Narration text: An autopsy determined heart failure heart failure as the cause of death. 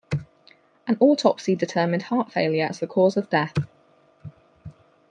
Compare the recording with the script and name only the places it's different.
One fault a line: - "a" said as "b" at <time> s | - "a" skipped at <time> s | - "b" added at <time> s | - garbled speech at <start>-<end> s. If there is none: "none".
- "heart failure" skipped at 2.7 s